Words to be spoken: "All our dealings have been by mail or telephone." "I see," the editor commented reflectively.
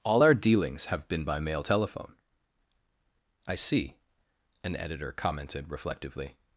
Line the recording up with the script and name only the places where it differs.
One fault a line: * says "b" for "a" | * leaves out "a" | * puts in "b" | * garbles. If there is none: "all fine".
* leaves out "or"
* says "an" for "the"